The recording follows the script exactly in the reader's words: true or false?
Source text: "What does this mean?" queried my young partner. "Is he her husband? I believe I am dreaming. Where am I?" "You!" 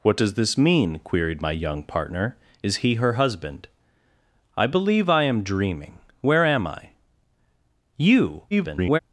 false